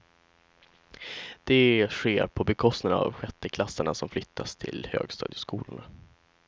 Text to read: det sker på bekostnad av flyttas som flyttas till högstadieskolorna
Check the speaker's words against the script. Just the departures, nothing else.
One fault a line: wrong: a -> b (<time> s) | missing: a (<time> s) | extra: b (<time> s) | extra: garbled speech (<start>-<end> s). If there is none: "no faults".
wrong: flyttas -> sjätteklassarna (3.1 s)